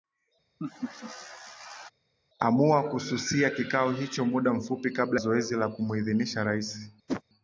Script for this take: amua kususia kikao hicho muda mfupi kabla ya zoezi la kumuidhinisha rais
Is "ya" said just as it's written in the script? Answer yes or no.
no